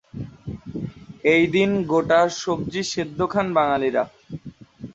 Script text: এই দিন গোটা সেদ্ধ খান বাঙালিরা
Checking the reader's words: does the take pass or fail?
fail